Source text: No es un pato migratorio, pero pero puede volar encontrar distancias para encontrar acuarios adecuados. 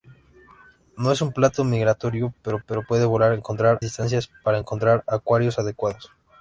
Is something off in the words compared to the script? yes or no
no